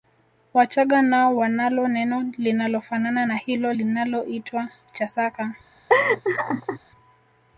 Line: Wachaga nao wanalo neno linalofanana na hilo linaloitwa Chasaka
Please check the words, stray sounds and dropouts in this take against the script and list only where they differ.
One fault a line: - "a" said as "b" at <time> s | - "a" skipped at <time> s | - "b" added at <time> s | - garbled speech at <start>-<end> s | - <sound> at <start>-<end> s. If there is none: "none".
- laugh at 5.9-6.8 s